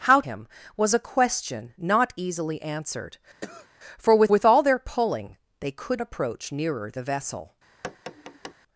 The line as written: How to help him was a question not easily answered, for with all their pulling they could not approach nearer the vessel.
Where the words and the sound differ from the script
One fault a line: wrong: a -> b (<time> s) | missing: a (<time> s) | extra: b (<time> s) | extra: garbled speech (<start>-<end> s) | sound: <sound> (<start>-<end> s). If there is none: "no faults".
missing: to help (0.2 s)
sound: cough (3.4-3.7 s)
extra: with (4.3 s)
missing: not (6.0 s)
sound: tap (7.8-8.5 s)